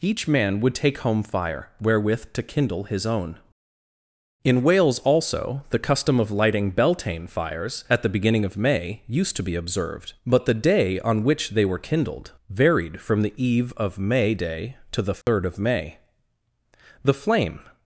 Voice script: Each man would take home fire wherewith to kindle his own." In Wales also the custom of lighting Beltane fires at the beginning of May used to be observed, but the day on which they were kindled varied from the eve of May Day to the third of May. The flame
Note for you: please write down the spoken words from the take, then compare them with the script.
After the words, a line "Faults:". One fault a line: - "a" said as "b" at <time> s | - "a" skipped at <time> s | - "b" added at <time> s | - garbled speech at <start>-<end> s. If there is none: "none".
Each man would take home fire wherewith to kindle his own." In Wales also the custom of lighting Beltane fires at the beginning of May used to be observed, but the day on which they were kindled varied from the eve of May Day to the third of May. The flame
Faults:
none